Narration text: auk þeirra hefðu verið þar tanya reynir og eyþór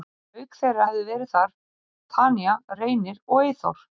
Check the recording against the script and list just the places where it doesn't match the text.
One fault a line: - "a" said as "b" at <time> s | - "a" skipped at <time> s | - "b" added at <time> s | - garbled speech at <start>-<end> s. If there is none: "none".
none